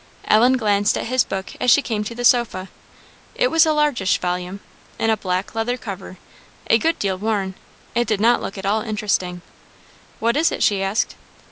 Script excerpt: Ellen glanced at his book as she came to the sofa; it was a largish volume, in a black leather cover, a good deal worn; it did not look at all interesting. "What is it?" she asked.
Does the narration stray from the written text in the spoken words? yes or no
no